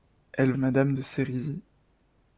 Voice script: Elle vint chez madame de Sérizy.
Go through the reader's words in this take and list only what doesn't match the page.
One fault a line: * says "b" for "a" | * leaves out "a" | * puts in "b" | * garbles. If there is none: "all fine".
* leaves out "vint chez"